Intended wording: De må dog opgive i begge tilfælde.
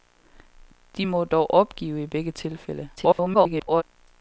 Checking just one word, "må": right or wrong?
right